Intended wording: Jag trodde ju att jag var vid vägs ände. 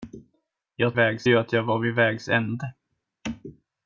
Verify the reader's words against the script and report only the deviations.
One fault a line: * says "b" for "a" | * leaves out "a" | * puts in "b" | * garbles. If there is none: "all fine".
* says "vägs" for "trodde"